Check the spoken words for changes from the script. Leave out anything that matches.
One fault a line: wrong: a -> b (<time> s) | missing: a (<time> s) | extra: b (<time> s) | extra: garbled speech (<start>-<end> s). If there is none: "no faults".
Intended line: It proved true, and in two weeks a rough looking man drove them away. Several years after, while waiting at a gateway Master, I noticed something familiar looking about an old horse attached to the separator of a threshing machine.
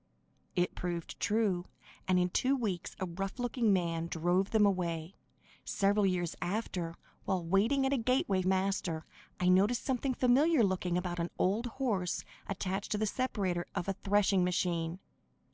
no faults